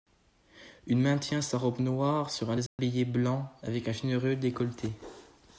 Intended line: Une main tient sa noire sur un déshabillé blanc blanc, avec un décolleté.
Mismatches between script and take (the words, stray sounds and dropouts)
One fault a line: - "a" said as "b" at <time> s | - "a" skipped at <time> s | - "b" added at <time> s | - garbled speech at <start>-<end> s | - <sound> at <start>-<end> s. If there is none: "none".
- "robe" added at 1.6 s
- dropout at 2.7-2.8 s
- "blanc" skipped at 3.5 s
- "généreux" added at 3.9 s